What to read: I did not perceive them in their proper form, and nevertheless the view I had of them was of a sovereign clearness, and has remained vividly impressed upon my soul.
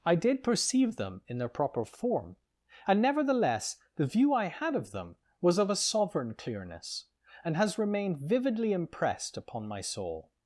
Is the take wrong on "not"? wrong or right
wrong